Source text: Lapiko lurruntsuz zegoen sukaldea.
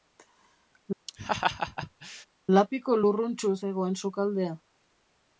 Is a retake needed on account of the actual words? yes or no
no